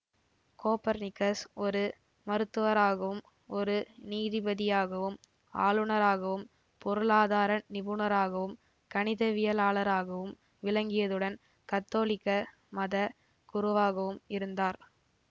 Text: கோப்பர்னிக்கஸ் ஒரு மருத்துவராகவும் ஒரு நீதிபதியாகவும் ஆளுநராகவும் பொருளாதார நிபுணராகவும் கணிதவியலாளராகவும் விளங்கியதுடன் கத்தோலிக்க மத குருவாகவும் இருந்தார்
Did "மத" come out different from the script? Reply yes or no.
no